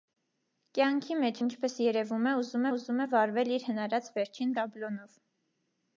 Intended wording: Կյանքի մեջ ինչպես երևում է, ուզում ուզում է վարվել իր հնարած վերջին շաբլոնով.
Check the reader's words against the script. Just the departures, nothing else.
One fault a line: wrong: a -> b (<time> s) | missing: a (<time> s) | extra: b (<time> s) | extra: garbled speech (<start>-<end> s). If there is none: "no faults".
no faults